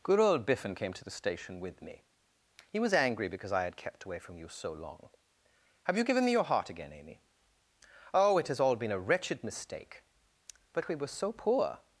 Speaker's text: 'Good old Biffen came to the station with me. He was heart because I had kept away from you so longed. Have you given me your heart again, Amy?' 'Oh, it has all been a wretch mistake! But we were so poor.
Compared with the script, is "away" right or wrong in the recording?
right